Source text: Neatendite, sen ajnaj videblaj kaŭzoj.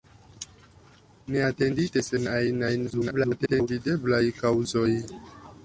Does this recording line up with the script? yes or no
no